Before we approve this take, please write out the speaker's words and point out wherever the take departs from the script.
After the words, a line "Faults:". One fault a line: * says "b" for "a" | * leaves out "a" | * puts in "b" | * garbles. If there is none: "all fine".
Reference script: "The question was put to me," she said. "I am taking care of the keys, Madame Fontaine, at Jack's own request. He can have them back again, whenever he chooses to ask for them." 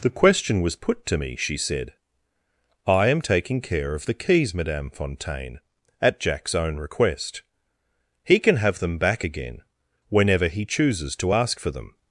"The question was put to me," she said. "I am taking care of the keys, Madame Fontaine, at Jack's own request. He can have them back again, whenever he chooses to ask for them."
Faults:
all fine